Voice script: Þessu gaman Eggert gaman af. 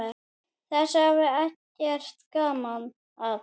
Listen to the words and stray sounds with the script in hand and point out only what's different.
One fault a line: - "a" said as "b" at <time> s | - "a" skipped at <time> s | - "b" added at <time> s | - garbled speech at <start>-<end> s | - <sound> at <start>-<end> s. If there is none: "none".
- "gaman" said as "hafði" at 1.1 s